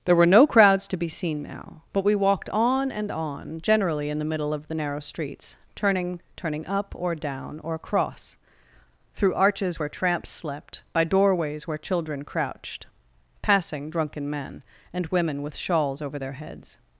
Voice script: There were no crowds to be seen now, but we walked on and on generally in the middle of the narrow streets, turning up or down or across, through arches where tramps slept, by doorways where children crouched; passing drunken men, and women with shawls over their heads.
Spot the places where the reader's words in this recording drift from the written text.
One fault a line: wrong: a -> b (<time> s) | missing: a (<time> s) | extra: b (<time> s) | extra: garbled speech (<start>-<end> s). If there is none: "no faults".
extra: turning (6.4 s)